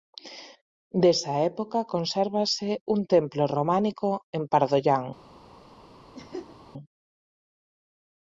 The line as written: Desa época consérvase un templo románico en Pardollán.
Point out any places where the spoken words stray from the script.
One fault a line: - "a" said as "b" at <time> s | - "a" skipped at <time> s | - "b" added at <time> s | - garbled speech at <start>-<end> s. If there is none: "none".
none